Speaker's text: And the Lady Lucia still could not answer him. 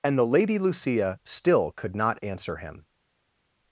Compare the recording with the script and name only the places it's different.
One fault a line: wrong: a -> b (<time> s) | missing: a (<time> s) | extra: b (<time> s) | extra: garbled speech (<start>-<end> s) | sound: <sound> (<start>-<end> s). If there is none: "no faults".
no faults